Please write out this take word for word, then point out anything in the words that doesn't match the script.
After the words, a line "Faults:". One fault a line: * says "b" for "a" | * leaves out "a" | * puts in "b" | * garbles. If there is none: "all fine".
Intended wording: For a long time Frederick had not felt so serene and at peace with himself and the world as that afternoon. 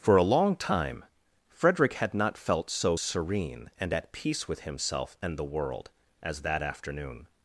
For a long time Frederick had not felt so serene and at peace with himself and the world as that afternoon.
Faults:
all fine